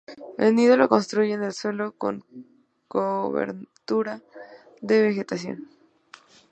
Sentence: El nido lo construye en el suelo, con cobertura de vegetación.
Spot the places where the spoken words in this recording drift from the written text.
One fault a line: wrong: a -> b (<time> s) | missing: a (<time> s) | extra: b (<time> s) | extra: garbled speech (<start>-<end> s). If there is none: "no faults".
no faults